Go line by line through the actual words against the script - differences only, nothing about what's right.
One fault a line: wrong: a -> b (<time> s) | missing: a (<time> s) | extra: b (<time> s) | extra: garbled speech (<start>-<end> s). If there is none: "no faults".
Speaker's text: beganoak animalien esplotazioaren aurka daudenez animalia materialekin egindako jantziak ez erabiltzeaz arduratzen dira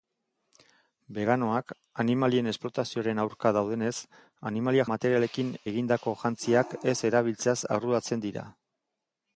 no faults